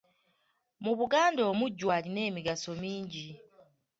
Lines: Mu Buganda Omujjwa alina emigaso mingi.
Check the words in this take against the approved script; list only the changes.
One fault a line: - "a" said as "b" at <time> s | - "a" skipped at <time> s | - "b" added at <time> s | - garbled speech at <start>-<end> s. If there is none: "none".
none